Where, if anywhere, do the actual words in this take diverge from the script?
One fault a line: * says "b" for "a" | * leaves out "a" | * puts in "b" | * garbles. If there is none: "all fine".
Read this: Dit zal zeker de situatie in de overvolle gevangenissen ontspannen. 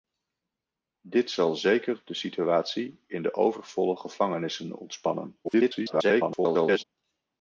* garbles